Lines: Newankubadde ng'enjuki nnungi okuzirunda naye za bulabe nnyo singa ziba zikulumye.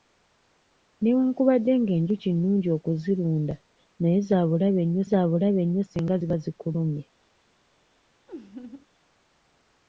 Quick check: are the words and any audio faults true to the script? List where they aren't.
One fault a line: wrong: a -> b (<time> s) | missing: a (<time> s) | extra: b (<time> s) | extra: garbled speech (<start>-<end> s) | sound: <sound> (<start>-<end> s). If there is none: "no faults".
extra: za bulabe nnyo (5.1 s)
sound: laugh (8.3-8.9 s)